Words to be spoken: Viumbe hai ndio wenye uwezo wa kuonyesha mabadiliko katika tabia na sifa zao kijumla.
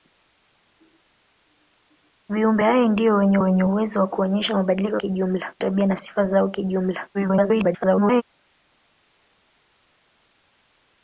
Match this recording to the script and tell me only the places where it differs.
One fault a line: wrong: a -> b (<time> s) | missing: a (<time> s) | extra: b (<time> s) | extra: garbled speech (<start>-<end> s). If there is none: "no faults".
extra: wenye (3.4 s)
wrong: katika -> kijumla (5.0 s)
extra: garbled speech (7.1-8.2 s)